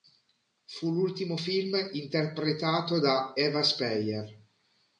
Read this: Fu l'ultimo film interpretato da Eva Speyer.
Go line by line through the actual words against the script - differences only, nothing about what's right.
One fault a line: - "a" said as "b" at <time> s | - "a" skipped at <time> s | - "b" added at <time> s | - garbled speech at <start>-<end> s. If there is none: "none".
none